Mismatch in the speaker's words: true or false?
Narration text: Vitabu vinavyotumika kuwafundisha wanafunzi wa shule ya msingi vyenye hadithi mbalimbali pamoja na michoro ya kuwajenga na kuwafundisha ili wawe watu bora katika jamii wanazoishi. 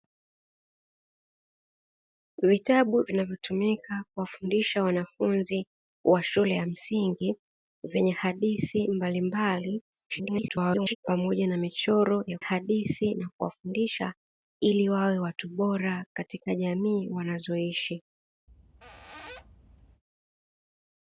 true